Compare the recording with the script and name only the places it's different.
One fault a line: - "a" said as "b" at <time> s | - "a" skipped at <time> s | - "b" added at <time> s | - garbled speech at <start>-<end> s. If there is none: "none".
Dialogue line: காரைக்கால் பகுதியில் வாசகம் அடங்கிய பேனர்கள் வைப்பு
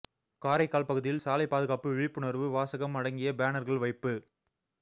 - "சாலை பாதுகாப்பு விழிப்புணர்வு" added at 1.2 s